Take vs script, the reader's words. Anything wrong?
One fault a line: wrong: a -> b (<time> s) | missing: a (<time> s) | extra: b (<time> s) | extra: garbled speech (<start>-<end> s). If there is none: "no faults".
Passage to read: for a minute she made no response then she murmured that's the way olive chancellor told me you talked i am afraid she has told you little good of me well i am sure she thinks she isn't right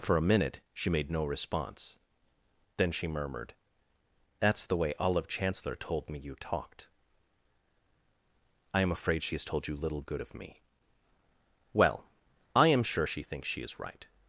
wrong: isn't -> is (13.6 s)